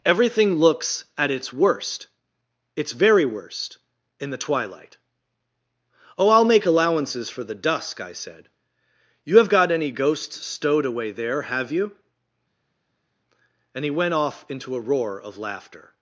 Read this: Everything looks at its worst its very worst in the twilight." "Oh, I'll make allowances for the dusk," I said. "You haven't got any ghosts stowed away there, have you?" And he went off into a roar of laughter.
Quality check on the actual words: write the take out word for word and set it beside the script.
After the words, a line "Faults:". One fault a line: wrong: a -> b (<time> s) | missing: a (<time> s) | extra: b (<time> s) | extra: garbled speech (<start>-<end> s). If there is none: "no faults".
Everything looks at its worst its very worst in the twilight." "Oh, I'll make allowances for the dusk," I said. "You have got any ghosts stowed away there, have you?" And he went off into a roar of laughter.
Faults:
wrong: haven't -> have (9.4 s)